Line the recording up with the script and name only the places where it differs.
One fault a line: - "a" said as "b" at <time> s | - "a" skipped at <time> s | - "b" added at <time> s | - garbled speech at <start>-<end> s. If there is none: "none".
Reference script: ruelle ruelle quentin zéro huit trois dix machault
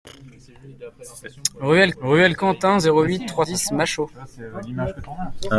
none